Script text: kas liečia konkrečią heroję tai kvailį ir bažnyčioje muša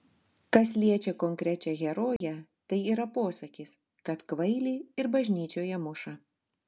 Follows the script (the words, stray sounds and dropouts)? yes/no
no